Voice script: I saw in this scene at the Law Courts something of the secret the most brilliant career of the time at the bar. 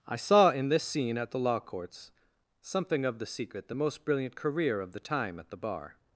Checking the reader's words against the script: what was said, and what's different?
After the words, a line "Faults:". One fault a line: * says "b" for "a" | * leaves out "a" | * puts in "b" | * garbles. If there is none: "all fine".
I saw in this scene at the Law Courts something of the secret the most brilliant career of the time at the bar.
Faults:
all fine